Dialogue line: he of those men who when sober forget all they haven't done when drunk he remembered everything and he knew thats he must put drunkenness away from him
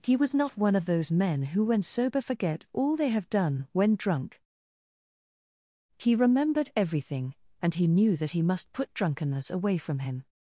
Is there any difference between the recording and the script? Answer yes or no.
yes